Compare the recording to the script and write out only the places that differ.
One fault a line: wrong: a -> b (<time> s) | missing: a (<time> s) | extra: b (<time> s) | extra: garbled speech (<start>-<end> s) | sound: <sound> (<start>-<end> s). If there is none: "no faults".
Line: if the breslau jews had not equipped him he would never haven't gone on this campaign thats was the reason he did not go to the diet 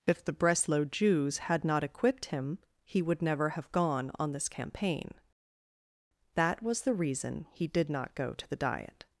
wrong: haven't -> have (3.5 s)
wrong: thats -> that (6.3 s)